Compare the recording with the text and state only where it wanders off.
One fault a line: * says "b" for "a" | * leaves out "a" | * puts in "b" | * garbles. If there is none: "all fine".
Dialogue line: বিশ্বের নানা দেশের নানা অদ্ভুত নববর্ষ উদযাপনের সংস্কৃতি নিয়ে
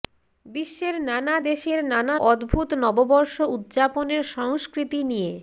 all fine